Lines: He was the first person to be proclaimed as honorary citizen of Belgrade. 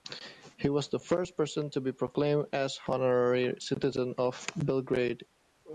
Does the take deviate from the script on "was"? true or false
false